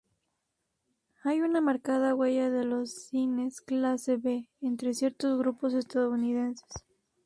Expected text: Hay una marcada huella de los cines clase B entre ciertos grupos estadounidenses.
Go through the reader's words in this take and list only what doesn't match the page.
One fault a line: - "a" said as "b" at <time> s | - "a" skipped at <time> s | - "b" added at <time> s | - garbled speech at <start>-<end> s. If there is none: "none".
none